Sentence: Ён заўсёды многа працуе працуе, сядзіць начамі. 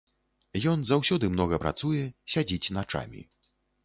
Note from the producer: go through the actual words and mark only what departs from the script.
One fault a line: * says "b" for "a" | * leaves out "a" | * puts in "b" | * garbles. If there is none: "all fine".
* leaves out "працуе"